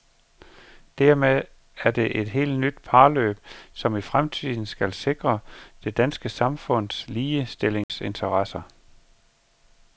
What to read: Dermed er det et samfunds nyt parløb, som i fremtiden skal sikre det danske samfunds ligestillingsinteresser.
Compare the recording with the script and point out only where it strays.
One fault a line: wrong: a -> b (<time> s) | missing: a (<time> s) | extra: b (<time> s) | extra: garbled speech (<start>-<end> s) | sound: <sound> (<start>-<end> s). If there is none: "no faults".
wrong: samfunds -> helt (2.3 s)
sound: dropout (7.8-7.9 s)